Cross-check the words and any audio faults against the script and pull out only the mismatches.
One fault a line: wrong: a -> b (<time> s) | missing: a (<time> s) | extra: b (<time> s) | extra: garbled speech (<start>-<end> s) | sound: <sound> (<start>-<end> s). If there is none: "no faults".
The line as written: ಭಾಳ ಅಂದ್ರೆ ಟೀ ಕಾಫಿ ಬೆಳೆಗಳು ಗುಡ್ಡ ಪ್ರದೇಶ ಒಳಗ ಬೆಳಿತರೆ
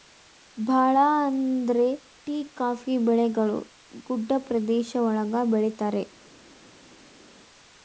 no faults